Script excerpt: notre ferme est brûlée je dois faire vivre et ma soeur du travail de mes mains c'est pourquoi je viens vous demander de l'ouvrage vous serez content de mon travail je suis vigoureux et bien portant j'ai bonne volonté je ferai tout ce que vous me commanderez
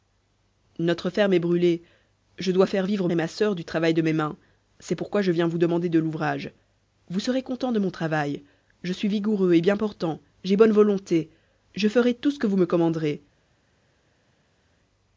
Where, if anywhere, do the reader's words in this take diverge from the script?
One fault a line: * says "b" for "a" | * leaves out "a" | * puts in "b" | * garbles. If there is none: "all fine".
all fine